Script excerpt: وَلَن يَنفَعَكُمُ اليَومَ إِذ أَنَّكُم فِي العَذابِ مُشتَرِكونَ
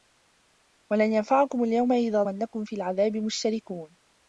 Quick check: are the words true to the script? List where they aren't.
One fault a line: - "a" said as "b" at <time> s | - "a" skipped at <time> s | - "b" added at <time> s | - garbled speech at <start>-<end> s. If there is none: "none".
none